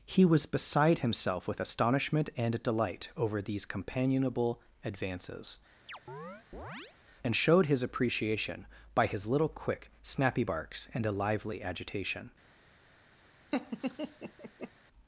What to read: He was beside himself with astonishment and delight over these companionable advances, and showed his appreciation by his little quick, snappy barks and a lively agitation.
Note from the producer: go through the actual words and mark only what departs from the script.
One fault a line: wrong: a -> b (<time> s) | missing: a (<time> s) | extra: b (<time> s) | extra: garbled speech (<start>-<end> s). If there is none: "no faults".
no faults